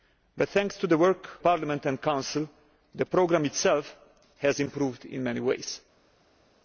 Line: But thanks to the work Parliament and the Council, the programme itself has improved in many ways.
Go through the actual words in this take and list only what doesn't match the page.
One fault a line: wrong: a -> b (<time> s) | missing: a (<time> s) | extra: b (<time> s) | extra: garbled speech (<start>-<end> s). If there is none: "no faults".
no faults